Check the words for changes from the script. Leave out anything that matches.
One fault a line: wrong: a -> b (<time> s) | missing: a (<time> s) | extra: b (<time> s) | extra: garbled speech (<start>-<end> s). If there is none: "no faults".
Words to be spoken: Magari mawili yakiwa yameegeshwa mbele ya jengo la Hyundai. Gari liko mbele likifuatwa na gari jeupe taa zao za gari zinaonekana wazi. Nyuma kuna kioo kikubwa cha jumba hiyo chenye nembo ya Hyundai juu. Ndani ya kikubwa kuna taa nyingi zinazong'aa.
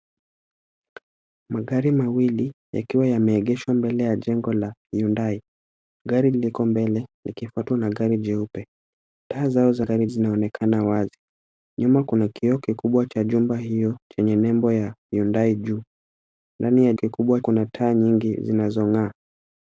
no faults